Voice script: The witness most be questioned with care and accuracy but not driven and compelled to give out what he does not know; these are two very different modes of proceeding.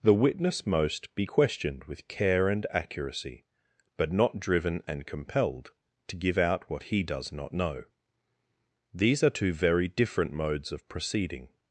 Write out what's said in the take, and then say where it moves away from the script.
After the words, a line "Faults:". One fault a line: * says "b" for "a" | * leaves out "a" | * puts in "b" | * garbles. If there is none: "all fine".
The witness most be questioned with care and accuracy but not driven and compelled to give out what he does not know; these are two very different modes of proceeding.
Faults:
all fine